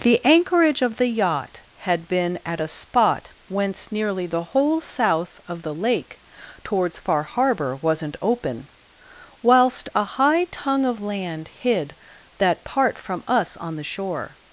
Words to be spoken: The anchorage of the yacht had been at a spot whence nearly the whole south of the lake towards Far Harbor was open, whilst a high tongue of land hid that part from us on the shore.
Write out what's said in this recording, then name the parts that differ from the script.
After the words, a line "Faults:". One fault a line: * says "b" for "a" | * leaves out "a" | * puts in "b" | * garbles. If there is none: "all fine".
The anchorage of the yacht had been at a spot whence nearly the whole south of the lake towards Far Harbor wasn't open, whilst a high tongue of land hid that part from us on the shore.
Faults:
* says "wasn't" for "was"